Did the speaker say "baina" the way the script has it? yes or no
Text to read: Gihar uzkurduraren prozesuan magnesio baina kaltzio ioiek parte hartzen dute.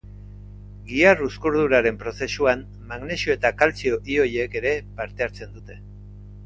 no